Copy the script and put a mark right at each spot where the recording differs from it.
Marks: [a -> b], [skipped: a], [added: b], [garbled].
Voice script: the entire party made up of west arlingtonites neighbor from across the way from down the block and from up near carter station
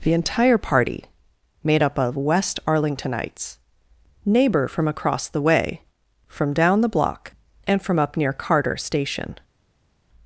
the entire party made up of west arlingtonites neighbor from across the way from down the block and from up near carter station